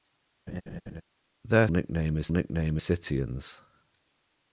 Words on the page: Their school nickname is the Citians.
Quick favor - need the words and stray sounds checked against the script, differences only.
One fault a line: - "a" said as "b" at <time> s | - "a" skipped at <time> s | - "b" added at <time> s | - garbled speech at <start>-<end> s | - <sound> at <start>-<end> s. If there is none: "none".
- laugh at 0.5-1.0 s
- "school" skipped at 1.7 s
- "the" said as "nickname" at 2.3 s